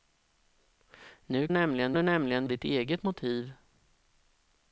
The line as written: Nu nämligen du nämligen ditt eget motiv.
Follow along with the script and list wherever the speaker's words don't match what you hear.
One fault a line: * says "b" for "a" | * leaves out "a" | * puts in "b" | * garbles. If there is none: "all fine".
all fine